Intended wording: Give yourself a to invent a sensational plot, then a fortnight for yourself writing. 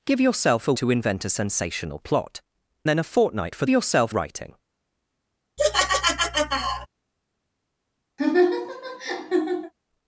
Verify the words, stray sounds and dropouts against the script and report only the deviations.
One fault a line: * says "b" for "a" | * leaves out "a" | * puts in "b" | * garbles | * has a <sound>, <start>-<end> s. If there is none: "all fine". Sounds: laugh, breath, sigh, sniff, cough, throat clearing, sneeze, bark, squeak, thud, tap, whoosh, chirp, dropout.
* has a laugh, 5.6-6.9 s
* has a laugh, 8.2-9.7 s